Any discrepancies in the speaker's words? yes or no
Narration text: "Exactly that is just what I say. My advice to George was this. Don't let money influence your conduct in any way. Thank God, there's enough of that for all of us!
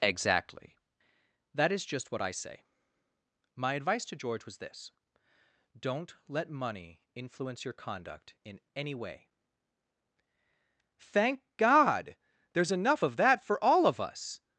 no